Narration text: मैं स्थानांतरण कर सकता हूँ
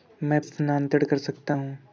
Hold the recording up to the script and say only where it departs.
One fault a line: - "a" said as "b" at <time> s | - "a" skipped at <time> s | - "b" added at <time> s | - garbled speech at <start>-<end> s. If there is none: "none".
none